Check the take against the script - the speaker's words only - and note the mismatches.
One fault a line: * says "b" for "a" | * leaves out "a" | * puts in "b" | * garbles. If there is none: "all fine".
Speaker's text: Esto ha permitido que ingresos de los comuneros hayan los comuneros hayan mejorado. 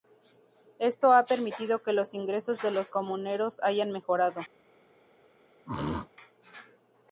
* puts in "los"
* leaves out "los comuneros hayan"